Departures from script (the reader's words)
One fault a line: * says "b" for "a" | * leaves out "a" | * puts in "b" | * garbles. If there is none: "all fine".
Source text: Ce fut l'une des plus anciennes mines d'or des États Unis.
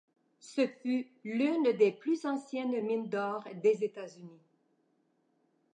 all fine